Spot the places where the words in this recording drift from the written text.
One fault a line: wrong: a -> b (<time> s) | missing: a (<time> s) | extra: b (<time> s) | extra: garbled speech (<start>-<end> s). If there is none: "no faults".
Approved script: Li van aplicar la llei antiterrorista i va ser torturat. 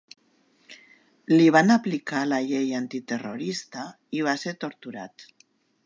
no faults